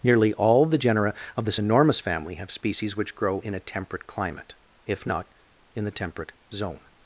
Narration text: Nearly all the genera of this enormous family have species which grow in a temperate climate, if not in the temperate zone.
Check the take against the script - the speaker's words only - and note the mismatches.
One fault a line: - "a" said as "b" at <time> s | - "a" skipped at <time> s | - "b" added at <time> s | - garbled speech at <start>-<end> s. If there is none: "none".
none